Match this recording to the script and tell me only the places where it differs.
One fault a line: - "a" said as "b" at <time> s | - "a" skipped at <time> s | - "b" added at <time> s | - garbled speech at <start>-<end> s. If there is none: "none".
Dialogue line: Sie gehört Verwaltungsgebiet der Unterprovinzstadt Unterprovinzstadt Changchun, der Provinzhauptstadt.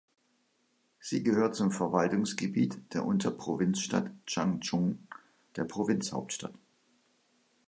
- "zum" added at 1.6 s
- "Unterprovinzstadt" skipped at 4.1 s